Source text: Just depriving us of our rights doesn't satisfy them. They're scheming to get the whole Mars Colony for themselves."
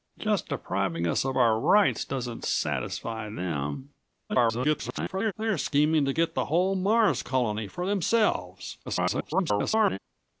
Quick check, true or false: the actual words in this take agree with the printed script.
false